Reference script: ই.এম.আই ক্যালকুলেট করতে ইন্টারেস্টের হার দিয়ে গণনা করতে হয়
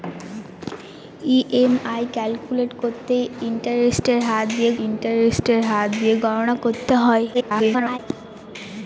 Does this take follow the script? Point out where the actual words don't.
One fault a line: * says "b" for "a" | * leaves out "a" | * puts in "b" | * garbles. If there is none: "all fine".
* puts in "ইন্টারেস্টের হার দিয়ে"
* garbles